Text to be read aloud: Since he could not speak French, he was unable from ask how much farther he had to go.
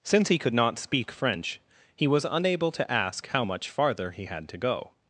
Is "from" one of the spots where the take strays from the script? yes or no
yes